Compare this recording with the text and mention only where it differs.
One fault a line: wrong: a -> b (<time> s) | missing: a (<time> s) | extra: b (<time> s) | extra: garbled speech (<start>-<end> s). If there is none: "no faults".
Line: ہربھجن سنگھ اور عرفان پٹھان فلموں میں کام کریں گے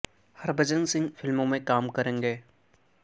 missing: اور عرفان پٹھان (1.1 s)